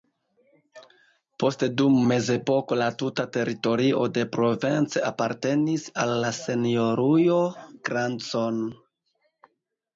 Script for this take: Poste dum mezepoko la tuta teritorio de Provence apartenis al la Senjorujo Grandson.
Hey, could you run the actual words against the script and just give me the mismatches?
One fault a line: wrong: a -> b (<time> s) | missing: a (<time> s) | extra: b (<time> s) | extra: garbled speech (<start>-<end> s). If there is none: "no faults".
no faults